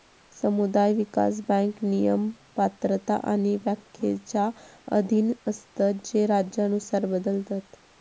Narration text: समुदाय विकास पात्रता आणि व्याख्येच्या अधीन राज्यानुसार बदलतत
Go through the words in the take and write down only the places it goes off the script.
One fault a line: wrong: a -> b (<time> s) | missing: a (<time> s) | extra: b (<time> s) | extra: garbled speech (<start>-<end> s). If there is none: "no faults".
extra: बँक नियम (1.5 s)
extra: असतत जे (5.5 s)